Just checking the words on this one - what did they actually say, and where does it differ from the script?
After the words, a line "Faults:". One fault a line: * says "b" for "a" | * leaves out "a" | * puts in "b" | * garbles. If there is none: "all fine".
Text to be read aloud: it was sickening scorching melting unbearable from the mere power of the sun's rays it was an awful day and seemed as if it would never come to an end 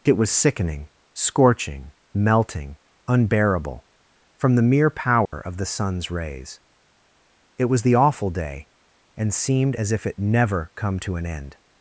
it was sickening scorching melting unbearable from the mere power of the sun's rays it was the awful day and seemed as if it never come to an end
Faults:
* says "the" for "an"
* leaves out "would"